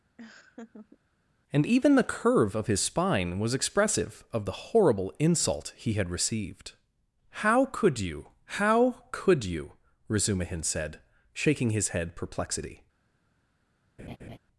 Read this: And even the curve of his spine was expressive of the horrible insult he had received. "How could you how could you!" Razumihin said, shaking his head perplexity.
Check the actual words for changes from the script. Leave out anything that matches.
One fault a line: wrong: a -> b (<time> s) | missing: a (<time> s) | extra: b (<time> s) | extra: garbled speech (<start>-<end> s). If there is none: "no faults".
no faults